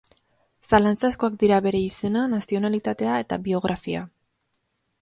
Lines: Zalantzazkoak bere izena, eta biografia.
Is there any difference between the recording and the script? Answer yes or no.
yes